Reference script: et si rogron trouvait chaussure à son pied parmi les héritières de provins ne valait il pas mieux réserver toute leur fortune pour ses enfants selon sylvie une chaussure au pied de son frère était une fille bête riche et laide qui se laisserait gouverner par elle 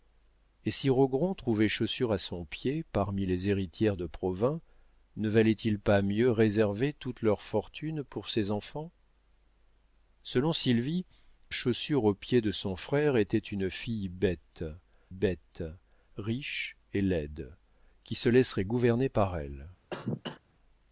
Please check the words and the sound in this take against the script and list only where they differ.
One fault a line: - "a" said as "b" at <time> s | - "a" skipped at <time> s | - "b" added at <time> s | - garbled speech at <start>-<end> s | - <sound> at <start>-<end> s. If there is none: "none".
- "une" skipped at 11.1 s
- "bête" added at 15.1 s
- cough at 19.9-20.4 s